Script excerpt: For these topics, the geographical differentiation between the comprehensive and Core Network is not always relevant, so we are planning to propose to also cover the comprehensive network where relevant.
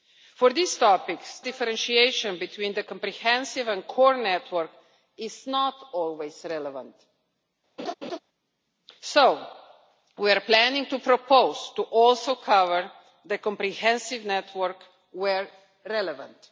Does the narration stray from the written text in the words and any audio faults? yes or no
yes